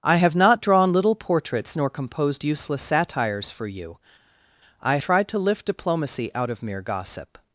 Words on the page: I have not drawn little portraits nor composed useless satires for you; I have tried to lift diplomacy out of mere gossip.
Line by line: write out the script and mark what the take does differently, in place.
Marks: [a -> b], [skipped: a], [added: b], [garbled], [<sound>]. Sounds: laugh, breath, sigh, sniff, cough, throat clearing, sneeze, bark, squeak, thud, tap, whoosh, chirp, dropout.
I have not drawn little portraits nor composed useless satires for you; I [skipped: have] tried to lift diplomacy out of mere gossip.